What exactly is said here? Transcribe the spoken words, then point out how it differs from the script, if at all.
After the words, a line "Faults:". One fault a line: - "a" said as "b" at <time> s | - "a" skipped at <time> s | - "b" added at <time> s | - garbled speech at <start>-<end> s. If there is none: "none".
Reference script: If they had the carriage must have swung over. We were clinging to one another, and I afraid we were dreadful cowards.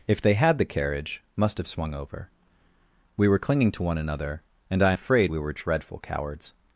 If they had the carriage must have swung over. We were clinging to one another, and I afraid we were dreadful cowards.
Faults:
none